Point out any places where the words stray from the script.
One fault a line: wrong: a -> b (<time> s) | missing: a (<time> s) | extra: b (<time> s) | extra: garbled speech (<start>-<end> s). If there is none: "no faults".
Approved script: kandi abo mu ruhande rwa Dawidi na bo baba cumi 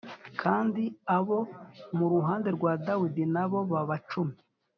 no faults